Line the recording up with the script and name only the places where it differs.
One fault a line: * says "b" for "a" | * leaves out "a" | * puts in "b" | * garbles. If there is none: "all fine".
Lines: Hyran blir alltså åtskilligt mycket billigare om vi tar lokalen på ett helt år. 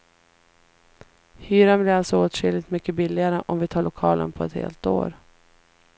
all fine